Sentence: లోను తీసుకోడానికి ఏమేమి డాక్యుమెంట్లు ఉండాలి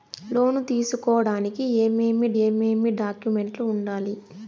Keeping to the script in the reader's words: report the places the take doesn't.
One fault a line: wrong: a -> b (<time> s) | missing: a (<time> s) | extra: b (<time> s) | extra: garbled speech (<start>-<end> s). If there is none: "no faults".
extra: ఏమేమి (2.4 s)